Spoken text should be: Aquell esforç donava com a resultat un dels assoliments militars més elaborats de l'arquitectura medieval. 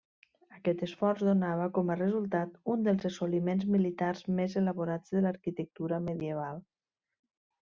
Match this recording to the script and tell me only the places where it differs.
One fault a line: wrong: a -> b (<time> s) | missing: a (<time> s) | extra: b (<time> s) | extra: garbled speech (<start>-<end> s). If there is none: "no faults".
wrong: Aquell -> Aquest (0.6 s)